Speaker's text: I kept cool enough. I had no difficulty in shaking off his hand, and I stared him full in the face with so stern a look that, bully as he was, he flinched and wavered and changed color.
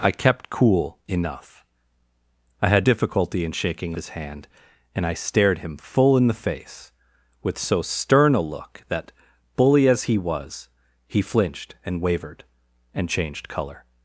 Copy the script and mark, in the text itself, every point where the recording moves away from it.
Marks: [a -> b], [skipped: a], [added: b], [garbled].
I kept cool enough. I had [skipped: no] difficulty in shaking [skipped: off] his hand, and I stared him full in the face with so stern a look that, bully as he was, he flinched and wavered and changed color.